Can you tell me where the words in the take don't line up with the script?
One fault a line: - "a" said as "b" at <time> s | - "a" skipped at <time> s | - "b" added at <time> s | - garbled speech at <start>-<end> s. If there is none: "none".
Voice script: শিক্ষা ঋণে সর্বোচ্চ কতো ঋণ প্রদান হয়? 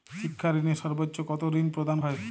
none